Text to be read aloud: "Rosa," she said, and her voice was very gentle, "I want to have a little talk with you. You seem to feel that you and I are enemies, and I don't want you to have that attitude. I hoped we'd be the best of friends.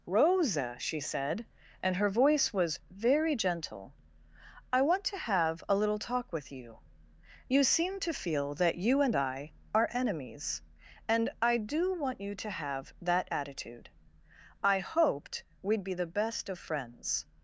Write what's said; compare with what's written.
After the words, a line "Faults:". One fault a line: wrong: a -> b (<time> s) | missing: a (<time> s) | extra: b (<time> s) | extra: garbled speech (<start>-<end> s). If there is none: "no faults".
"Rosa," she said, and her voice was very gentle, "I want to have a little talk with you. You seem to feel that you and I are enemies, and I do want you to have that attitude. I hoped we'd be the best of friends.
Faults:
wrong: don't -> do (11.6 s)